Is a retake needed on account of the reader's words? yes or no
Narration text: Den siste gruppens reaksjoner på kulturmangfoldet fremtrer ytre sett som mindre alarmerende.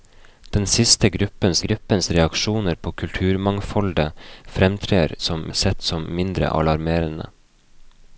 yes